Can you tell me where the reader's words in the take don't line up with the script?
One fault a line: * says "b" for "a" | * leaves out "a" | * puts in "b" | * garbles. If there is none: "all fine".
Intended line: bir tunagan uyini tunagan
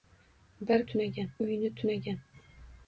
all fine